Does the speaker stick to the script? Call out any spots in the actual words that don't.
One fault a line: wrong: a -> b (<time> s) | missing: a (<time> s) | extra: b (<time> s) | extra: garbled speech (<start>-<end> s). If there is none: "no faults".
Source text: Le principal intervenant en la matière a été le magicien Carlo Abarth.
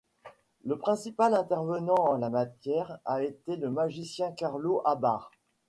no faults